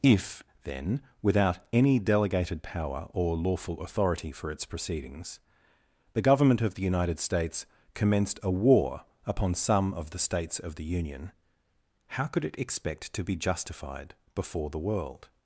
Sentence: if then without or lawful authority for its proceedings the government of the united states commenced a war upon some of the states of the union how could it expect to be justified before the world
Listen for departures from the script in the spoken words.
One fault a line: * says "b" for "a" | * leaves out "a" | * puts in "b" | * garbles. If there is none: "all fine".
* puts in "any delegated power"